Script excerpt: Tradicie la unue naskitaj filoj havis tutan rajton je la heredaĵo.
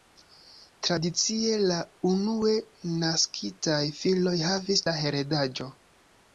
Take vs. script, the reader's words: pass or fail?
fail